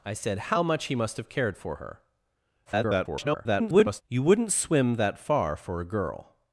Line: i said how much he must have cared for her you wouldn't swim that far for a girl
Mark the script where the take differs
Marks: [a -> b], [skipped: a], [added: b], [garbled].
i said how much he must have cared for her [garbled] you wouldn't swim that far for a girl